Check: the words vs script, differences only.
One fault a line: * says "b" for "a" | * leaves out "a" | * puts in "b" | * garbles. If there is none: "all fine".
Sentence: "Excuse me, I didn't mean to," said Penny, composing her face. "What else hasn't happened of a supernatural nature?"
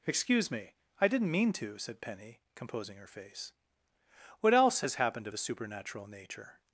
* says "has" for "hasn't"